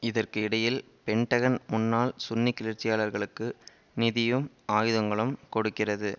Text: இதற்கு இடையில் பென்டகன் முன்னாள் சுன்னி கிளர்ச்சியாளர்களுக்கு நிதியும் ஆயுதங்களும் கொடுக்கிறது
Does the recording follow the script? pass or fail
pass